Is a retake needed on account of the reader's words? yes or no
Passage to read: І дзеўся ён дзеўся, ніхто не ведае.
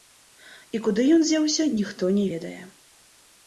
yes